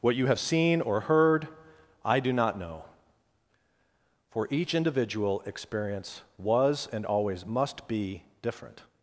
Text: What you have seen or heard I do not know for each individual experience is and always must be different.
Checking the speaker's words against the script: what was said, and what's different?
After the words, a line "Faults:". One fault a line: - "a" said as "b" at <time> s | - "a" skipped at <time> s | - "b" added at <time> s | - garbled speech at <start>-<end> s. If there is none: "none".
What you have seen or heard I do not know for each individual experience was and always must be different.
Faults:
- "is" said as "was" at 6.4 s